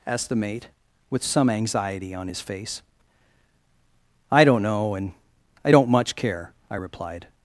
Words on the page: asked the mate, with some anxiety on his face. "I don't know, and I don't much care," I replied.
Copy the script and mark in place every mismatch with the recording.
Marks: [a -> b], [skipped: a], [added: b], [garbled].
asked the mate, with some anxiety on his face. "I don't know, and I don't much care," I replied.